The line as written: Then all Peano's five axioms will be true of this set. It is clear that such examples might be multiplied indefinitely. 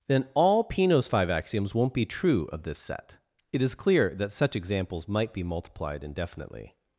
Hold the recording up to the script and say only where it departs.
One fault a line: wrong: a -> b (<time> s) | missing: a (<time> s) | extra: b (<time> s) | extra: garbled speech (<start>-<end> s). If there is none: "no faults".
wrong: will -> won't (1.8 s)